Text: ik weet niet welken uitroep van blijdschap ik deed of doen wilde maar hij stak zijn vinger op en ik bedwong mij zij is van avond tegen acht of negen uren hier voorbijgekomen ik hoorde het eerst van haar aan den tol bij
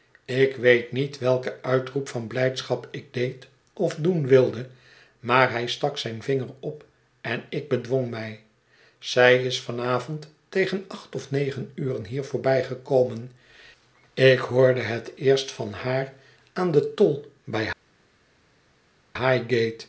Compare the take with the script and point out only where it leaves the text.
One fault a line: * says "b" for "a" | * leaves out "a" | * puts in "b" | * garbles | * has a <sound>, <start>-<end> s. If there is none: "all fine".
all fine